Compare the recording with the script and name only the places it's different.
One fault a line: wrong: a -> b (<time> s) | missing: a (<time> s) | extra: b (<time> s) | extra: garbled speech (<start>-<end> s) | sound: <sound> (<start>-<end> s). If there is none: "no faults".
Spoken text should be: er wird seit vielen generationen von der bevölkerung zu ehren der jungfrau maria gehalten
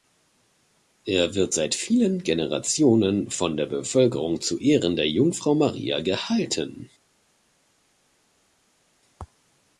no faults